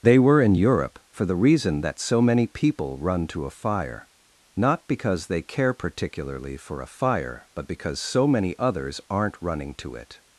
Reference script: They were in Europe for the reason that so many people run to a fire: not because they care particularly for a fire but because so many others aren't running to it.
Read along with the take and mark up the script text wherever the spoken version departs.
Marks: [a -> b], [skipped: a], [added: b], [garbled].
They were in Europe for the reason that so many people run to a fire: not because they care particularly for a fire but because so many others aren't running to it.